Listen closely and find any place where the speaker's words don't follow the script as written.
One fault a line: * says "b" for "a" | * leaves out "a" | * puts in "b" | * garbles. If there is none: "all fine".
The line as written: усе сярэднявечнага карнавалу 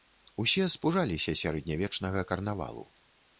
* puts in "спужаліся"